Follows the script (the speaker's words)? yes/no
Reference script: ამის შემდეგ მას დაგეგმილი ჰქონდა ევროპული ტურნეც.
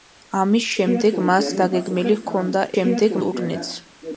no